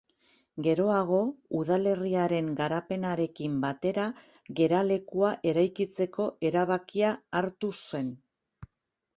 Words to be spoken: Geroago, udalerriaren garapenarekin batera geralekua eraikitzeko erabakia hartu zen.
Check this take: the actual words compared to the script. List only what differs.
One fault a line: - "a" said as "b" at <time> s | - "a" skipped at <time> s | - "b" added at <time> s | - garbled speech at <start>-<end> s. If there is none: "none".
none